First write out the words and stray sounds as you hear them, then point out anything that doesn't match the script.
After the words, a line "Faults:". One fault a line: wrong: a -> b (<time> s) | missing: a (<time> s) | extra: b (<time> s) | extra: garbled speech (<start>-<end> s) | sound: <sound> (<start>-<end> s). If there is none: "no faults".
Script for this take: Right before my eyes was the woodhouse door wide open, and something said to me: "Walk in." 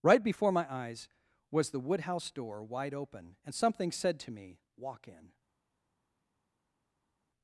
Right before my eyes was the woodhouse door wide open, and something said to me: "Walk in."
Faults:
no faults